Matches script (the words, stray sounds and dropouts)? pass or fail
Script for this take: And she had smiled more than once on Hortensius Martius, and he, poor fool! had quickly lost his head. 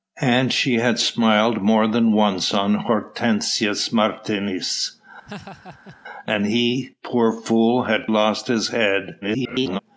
fail